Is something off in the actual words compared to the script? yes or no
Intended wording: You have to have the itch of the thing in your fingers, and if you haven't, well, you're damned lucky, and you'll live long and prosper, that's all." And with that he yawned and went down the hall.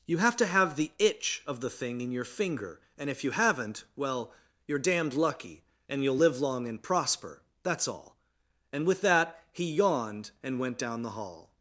yes